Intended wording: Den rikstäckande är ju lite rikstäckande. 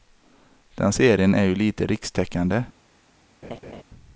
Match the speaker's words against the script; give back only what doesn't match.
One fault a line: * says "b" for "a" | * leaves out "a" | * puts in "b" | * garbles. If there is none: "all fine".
* says "serien" for "rikstäckande"